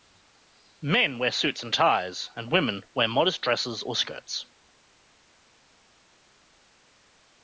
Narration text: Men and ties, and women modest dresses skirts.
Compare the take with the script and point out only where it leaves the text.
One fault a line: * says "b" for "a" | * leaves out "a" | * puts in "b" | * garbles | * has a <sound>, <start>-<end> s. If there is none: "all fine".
* puts in "wear suits"
* puts in "wear"
* puts in "or"